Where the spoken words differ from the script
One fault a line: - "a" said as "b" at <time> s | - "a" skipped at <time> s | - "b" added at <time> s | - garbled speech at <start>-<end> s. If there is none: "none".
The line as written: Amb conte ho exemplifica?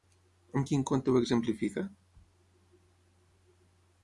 - "quin" added at 0.7 s